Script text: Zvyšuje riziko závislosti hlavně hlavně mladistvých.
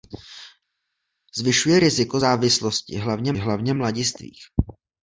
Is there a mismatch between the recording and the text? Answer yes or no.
no